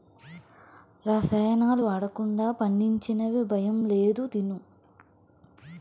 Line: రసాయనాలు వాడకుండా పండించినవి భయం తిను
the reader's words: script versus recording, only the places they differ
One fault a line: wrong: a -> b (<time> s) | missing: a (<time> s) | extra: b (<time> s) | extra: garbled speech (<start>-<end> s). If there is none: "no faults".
extra: లేదు (3.9 s)